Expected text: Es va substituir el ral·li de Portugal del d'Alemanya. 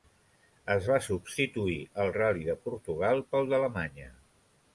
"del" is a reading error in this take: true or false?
true